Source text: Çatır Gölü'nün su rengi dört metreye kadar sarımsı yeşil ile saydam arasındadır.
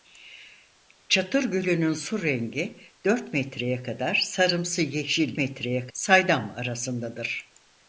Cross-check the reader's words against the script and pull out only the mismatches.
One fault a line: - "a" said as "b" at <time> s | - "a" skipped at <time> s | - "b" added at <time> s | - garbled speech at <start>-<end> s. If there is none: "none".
- "ile" said as "metreye" at 5.4 s